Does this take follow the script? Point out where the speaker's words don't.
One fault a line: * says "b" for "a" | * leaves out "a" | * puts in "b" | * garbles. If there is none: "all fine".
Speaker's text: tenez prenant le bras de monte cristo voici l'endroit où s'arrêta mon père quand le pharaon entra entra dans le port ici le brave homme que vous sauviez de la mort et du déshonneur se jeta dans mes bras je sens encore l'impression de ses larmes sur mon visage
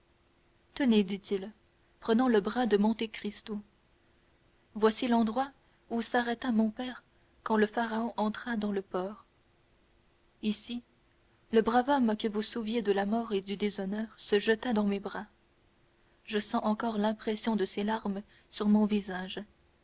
* puts in "dit il"
* leaves out "entra"